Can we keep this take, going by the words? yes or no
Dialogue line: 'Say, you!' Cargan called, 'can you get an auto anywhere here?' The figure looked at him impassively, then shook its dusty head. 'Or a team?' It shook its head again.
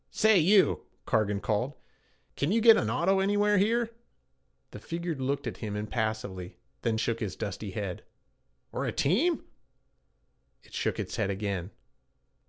yes